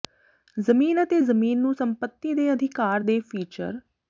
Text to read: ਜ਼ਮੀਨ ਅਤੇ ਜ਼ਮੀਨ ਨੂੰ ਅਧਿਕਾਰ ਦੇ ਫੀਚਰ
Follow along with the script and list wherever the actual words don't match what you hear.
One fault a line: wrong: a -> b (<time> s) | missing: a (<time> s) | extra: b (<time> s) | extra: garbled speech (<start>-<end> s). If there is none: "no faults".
extra: ਸੰਪਤੀ ਦੇ (1.7 s)